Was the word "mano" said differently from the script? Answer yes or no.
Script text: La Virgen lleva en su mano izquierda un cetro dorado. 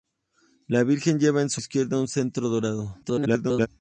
yes